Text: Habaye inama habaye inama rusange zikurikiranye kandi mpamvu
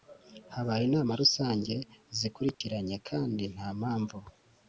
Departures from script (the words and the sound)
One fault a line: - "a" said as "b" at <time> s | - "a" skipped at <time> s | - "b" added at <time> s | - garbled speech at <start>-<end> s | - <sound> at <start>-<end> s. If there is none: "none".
- "habaye inama" skipped at 1.1 s
- dropout at 2.5-2.6 s
- "nta" added at 3.5 s